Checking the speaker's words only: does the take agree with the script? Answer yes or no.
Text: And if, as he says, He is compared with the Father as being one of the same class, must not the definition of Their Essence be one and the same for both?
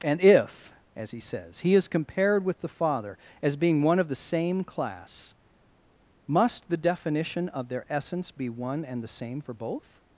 no